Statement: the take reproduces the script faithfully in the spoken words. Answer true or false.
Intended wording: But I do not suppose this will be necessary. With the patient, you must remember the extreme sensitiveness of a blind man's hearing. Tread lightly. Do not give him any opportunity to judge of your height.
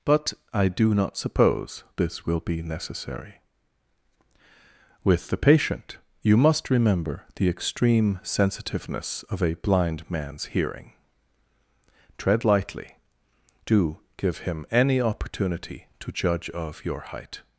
false